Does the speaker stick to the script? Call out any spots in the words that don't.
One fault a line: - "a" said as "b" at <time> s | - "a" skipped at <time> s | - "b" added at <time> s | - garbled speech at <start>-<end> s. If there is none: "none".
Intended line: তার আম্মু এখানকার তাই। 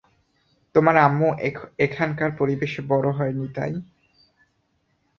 - "তার" said as "তোমার" at 0.8 s
- "পরিবেশে বড় হয়নি" added at 2.4 s